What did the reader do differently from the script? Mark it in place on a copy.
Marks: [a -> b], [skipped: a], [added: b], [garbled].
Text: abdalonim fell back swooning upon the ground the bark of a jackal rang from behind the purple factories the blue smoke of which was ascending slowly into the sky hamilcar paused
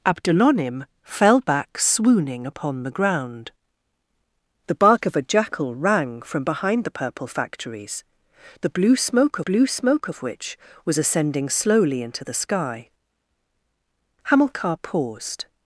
abdalonim fell back swooning upon the ground the bark of a jackal rang from behind the purple factories the blue smoke [added: blue smoke] of which was ascending slowly into the sky hamilcar paused